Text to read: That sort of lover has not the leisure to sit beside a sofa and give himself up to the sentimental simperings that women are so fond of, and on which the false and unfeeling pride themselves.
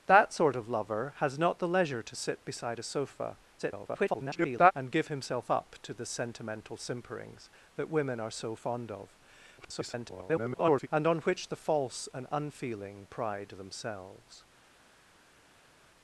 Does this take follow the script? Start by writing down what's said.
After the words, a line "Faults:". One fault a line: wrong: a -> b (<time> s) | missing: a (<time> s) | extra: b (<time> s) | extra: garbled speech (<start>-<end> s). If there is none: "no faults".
That sort of lover has not the leisure to sit beside a sofa [garbled] and give himself up to the sentimental simperings that women are so fond of, [garbled] and on which the false and unfeeling pride themselves.
Faults:
extra: garbled speech (3.6-4.7 s)
extra: garbled speech (9.6-10.9 s)